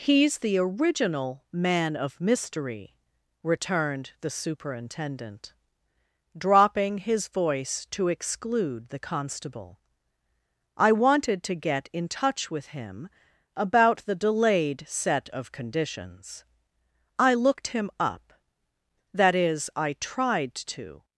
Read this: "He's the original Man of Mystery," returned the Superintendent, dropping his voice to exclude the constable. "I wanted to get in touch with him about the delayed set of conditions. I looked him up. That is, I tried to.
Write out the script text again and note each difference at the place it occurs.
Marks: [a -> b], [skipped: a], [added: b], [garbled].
"He's the original Man of Mystery," returned the Superintendent, dropping his voice to exclude the constable. "I wanted to get in touch with him about the delayed set of conditions. I looked him up. That is, I tried to.